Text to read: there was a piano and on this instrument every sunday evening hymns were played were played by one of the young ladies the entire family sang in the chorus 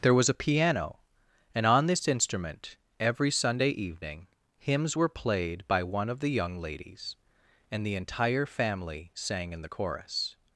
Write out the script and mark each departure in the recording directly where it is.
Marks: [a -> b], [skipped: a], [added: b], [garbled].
there was a piano and on this instrument every sunday evening hymns were played [skipped: were played] by one of the young ladies [added: and] the entire family sang in the chorus